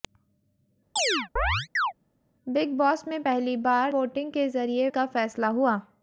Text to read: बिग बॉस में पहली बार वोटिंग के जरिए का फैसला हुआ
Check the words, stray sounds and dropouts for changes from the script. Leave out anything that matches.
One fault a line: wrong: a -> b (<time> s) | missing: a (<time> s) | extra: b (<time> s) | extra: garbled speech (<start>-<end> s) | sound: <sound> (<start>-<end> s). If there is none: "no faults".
sound: chirp (1.0-1.9 s)